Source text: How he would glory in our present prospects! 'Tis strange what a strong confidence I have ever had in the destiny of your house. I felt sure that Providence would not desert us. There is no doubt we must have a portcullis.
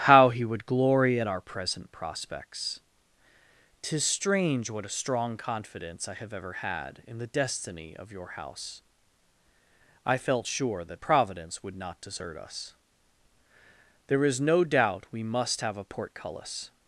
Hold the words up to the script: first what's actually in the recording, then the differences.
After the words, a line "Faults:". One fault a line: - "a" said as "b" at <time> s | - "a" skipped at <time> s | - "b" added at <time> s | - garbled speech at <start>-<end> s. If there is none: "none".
How he would glory at our present prospects! 'Tis strange what a strong confidence I have ever had in the destiny of your house. I felt sure that Providence would not desert us. There is no doubt we must have a portcullis.
Faults:
- "in" said as "at" at 1.2 s